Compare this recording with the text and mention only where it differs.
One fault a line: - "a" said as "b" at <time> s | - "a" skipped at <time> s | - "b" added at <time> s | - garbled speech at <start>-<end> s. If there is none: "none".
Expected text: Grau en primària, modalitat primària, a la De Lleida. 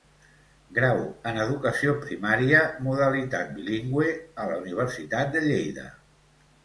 - "educació" added at 1.4 s
- "primària" said as "bilingüe" at 3.6 s
- "Universitat" added at 4.7 s